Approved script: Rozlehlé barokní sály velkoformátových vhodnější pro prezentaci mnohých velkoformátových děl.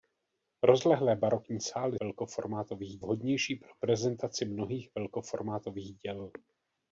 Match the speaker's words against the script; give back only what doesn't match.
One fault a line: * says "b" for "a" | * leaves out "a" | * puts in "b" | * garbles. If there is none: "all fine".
all fine